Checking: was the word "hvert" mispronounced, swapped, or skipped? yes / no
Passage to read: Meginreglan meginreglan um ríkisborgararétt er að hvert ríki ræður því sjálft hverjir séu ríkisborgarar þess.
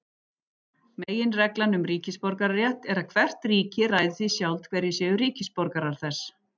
no